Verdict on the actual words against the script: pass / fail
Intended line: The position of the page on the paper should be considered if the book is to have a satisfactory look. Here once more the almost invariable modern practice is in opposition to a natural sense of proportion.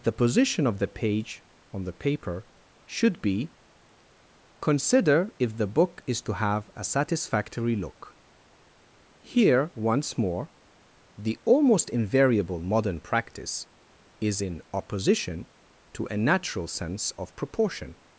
fail